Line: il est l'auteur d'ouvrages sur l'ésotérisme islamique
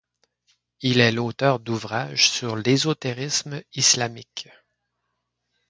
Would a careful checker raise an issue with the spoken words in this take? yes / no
no